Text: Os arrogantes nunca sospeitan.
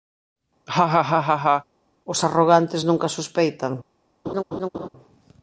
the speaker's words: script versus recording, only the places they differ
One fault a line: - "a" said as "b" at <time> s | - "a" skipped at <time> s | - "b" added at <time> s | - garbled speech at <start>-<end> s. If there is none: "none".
none